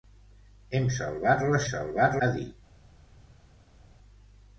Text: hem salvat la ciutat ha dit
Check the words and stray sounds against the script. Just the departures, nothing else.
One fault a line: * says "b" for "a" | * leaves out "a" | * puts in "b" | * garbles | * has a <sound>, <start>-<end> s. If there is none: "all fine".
* says "salvat" for "ciutat"